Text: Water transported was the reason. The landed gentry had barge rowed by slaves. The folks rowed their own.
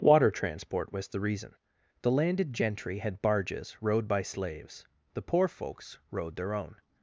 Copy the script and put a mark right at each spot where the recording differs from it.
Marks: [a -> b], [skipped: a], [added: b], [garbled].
Water [transported -> transport] was the reason. The landed gentry had [barge -> barges] rowed by slaves. The [added: poor] folks rowed their own.